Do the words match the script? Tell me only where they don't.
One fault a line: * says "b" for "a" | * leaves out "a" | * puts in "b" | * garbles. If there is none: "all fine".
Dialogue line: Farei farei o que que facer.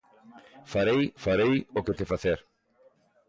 all fine